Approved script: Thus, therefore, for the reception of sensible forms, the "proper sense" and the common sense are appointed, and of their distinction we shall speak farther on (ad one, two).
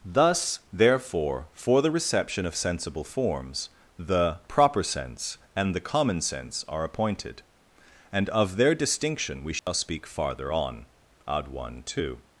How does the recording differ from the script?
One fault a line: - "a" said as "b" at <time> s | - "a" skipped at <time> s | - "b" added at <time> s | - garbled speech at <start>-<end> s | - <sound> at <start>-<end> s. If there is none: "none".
- dropout at 9.6-9.7 s